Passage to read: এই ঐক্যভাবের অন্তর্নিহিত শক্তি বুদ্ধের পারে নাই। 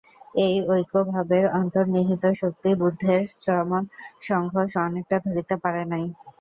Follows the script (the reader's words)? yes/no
no